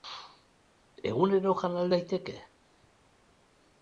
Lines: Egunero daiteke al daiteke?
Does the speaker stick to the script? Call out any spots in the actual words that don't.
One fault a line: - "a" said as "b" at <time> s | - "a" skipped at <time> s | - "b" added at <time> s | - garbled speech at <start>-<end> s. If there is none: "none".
- "daiteke" said as "jan" at 1.6 s